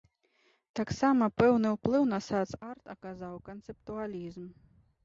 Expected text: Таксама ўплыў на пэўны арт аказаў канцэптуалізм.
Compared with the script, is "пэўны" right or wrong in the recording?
wrong